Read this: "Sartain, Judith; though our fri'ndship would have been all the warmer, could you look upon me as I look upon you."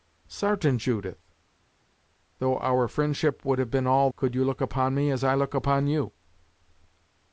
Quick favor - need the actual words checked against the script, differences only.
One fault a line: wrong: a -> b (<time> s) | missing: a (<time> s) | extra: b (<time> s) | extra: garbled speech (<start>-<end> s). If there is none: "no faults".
missing: the warmer (4.1 s)